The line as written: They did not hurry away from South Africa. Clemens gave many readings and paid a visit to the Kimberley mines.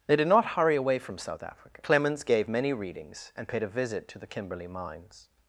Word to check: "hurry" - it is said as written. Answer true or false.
true